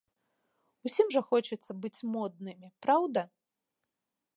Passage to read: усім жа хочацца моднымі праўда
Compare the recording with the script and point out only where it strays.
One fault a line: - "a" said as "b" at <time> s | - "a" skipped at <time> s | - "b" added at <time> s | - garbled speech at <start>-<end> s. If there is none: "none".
- "быць" added at 1.9 s